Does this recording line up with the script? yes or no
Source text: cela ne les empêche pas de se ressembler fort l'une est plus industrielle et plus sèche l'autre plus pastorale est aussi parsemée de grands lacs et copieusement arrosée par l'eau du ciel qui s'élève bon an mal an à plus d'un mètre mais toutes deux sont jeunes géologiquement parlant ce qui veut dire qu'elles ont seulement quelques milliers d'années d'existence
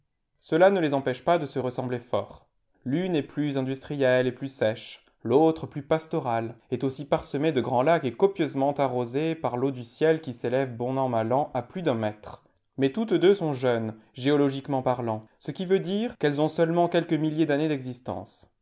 yes